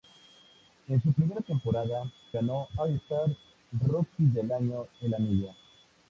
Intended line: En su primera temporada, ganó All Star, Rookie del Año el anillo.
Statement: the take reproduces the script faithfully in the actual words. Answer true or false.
true